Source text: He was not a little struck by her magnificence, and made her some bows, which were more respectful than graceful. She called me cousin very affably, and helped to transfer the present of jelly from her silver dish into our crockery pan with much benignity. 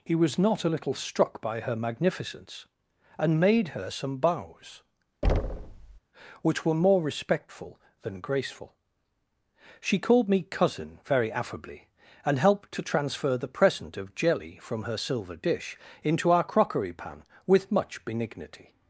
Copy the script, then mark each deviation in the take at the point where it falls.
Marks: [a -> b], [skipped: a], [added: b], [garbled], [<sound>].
He was not a little struck by her magnificence, and made her some bows, [thud] which were more respectful than graceful. She called me cousin very affably, and helped to transfer the present of jelly from her silver dish into our crockery pan with much benignity.